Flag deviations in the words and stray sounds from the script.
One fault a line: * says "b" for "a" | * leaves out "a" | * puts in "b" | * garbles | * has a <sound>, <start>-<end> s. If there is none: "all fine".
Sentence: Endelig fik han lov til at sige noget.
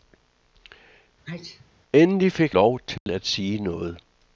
* has a sneeze, 1.2-1.7 s
* leaves out "han"
* has a dropout, 3.0-3.1 s